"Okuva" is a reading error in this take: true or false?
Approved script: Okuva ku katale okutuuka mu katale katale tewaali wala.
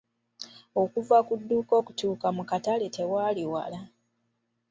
false